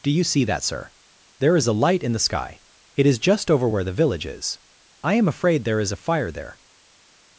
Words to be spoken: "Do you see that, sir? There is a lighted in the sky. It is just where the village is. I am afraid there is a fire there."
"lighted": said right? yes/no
no